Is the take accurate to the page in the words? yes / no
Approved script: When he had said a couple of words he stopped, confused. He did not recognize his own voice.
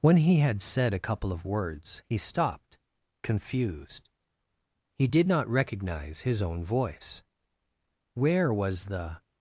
no